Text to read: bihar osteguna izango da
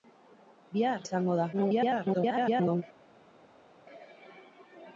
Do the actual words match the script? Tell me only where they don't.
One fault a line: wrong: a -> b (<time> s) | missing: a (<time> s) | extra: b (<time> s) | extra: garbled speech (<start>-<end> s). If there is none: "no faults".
missing: osteguna (1.0 s)
extra: garbled speech (1.5-2.8 s)